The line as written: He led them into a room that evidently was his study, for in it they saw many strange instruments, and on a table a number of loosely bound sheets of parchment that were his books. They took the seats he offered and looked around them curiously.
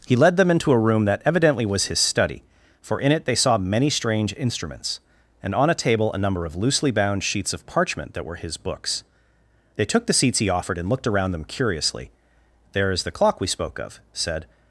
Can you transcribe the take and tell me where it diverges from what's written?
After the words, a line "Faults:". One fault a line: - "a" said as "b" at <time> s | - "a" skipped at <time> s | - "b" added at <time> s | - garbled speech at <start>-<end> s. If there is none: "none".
He led them into a room that evidently was his study, for in it they saw many strange instruments, and on a table a number of loosely bound sheets of parchment that were his books. They took the seats he offered and looked around them curiously. "There is the clock we spoke of," said
Faults:
- "There is the clock we spoke of said" added at 12.7 s